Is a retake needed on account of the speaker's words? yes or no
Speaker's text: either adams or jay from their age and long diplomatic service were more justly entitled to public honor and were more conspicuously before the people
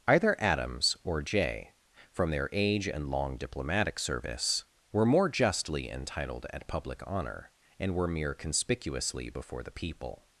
yes